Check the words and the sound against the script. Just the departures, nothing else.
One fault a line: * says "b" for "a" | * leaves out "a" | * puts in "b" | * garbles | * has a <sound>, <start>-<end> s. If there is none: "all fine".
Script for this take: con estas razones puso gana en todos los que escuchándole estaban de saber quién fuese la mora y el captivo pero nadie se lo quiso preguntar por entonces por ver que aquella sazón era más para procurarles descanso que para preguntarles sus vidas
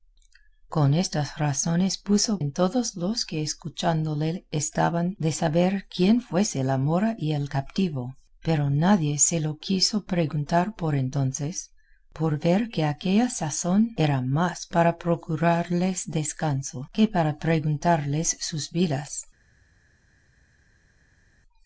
* leaves out "gana"